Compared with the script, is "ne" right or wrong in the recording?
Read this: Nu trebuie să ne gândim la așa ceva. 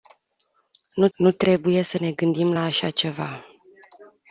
right